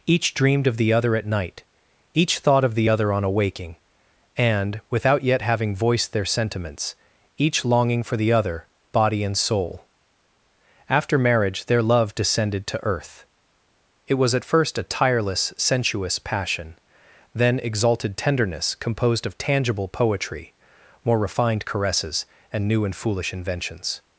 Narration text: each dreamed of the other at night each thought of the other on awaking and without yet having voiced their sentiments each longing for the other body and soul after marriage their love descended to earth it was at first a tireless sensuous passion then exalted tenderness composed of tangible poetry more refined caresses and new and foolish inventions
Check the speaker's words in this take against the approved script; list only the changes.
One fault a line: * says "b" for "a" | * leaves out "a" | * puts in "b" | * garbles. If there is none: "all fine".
all fine